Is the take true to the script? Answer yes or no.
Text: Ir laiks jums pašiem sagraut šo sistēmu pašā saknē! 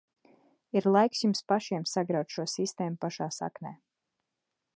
yes